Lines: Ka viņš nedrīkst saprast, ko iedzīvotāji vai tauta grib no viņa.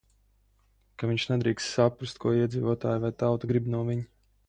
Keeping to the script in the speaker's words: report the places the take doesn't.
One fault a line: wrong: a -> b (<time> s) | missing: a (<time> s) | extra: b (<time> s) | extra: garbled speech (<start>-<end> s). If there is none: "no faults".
no faults